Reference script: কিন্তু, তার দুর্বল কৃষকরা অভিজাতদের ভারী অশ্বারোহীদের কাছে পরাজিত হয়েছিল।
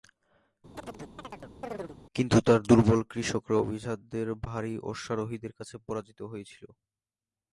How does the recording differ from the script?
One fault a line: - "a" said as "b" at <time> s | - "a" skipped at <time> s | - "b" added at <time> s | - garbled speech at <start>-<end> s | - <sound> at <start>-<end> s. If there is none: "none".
- chirp at 0.7-2.0 s